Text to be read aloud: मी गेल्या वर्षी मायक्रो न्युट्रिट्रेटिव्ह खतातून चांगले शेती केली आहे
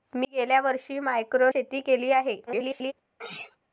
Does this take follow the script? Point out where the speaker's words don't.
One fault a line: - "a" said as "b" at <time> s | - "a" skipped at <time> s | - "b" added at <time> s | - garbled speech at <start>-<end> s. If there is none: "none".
- "न्युट्रिट्रेटिव्ह खतातून चांगले" skipped at 1.5 s
- garbled speech at 2.5-2.9 s